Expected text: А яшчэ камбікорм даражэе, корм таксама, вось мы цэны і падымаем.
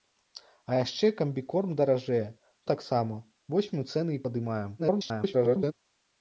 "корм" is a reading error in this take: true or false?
true